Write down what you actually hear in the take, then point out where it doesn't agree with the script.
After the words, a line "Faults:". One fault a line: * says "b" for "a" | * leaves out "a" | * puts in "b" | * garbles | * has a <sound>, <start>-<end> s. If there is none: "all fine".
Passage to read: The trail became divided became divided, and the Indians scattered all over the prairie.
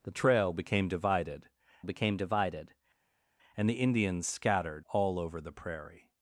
The trail became divided became divided, and the Indians scattered all over the prairie.
Faults:
all fine